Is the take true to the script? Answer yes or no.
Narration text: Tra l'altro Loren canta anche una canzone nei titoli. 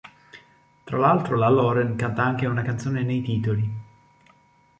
no